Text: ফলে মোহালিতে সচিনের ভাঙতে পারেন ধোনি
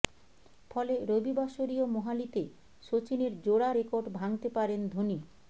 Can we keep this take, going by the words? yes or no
no